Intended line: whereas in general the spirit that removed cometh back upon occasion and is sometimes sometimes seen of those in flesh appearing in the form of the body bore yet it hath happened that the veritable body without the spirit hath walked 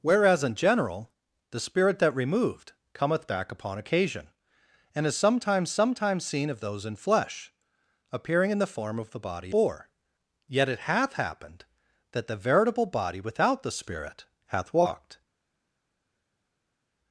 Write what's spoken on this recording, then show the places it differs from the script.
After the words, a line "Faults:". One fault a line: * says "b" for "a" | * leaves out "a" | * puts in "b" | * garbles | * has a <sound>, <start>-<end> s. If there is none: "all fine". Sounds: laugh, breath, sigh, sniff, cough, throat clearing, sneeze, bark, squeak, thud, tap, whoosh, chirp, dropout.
whereas in general the spirit that removed cometh back upon occasion and is sometimes sometimes seen of those in flesh appearing in the form of the body bore yet it hath happened that the veritable body without the spirit hath walked
Faults:
all fine